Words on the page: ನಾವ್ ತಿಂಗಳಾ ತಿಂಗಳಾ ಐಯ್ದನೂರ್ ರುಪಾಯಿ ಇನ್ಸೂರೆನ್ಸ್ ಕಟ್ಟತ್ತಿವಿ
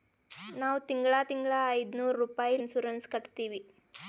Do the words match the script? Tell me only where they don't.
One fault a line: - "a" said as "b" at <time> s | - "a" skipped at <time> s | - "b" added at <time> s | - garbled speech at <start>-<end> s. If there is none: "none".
none